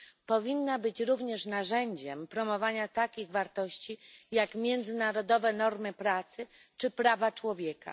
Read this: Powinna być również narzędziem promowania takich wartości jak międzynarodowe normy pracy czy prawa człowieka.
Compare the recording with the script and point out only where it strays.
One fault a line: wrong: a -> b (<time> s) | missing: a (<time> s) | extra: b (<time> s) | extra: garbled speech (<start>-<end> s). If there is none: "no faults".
no faults